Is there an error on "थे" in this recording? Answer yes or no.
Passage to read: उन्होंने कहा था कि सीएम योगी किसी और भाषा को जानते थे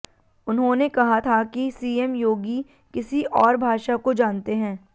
yes